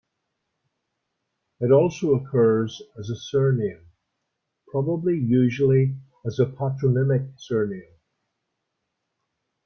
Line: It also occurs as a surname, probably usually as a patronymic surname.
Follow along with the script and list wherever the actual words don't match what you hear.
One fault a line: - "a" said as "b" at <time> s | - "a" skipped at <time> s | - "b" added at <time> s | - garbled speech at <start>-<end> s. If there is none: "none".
none